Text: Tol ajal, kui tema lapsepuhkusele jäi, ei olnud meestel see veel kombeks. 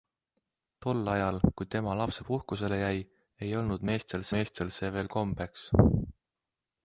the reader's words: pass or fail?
fail